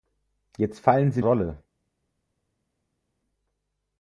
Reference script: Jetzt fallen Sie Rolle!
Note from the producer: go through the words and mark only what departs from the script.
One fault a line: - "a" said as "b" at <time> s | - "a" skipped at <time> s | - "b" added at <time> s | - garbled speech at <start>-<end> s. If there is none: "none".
none